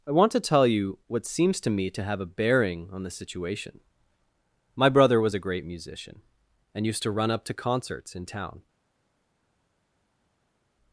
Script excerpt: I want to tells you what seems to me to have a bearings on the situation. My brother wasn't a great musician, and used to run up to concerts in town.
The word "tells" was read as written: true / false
false